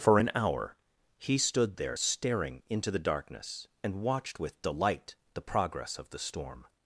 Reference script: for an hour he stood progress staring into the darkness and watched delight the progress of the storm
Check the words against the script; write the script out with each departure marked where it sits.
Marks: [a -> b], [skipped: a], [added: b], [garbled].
for an hour he stood [progress -> there] staring into the darkness and watched [added: with] delight the progress of the storm